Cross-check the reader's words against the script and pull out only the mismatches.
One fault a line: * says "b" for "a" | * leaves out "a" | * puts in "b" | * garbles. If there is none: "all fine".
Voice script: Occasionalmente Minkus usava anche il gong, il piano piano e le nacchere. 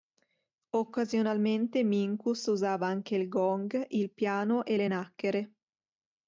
* leaves out "piano"